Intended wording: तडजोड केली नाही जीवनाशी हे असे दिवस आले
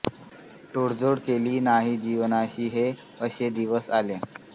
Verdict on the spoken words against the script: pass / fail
pass